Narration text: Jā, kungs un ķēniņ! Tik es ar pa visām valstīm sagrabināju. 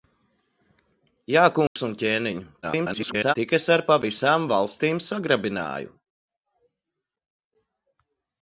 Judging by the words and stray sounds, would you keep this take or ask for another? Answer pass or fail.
fail